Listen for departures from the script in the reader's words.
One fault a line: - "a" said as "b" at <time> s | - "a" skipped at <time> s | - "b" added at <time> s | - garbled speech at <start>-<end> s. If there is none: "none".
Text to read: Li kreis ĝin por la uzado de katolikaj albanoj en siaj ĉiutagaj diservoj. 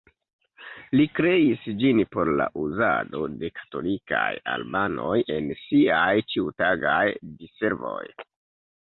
none